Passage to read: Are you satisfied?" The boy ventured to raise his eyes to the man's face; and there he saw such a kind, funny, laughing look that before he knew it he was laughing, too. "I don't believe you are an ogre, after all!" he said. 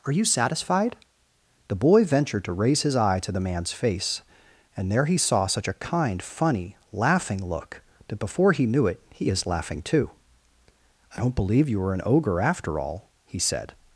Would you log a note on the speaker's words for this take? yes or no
yes